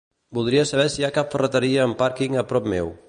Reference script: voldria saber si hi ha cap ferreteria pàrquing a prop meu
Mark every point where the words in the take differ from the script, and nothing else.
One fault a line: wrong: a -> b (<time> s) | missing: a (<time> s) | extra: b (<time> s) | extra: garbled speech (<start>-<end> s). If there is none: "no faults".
extra: amb (1.9 s)